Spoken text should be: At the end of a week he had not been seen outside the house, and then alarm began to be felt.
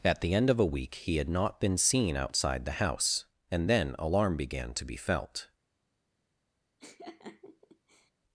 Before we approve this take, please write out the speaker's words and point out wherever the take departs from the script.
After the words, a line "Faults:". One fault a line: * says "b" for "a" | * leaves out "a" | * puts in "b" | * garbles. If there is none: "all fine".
At the end of a week he had not been seen outside the house, and then alarm began to be felt.
Faults:
all fine